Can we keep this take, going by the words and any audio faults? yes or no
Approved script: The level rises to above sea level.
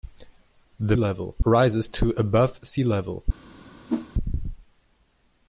no